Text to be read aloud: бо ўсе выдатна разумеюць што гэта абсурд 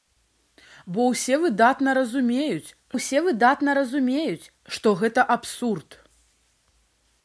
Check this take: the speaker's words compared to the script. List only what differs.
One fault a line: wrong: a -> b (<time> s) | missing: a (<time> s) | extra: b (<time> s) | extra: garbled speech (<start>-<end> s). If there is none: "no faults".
extra: ўсе выдатна разумеюць (3.0 s)